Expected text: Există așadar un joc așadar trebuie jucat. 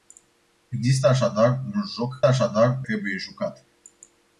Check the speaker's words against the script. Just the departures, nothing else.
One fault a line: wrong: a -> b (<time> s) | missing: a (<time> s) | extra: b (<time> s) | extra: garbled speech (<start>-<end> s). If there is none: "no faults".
no faults